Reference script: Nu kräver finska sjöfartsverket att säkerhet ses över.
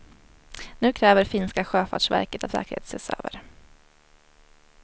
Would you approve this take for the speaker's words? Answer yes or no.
yes